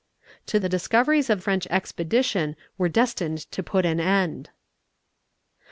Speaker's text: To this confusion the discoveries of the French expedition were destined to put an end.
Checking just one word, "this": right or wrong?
wrong